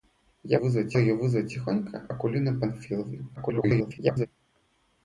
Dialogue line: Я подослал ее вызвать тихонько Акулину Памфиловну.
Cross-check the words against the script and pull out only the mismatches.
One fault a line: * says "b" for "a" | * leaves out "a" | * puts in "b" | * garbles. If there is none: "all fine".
* says "вызвать" for "подослал"
* garbles